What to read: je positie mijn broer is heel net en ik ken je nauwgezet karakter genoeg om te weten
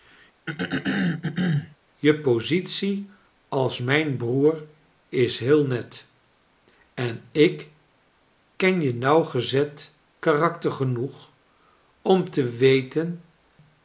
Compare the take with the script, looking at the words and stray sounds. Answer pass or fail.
fail